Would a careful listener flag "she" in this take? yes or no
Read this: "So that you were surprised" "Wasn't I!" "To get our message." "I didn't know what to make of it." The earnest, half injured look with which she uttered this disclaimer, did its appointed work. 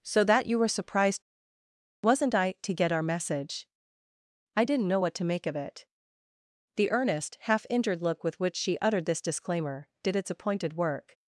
no